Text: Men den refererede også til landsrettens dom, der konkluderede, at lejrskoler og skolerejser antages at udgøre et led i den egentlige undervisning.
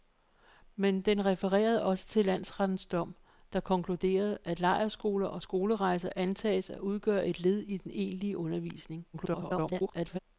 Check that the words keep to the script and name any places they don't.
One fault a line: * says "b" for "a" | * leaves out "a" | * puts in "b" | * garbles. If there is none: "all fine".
* garbles